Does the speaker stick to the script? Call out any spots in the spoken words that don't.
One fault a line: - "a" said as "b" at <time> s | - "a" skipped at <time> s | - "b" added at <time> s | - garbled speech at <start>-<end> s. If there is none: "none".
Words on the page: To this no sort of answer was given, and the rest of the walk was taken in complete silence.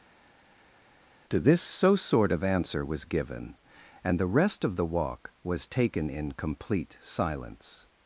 - "no" said as "so" at 1.6 s